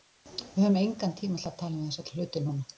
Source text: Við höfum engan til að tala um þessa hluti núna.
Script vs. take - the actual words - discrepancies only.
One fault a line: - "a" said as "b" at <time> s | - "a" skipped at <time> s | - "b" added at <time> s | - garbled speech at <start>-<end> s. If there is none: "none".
- "tíma" added at 1.2 s